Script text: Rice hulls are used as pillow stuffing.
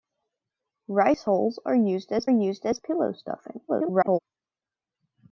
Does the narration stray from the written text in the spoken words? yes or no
yes